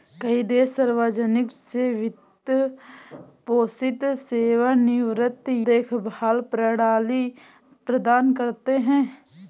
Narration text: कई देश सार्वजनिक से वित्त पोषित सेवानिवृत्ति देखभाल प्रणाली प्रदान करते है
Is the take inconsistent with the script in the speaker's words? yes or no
no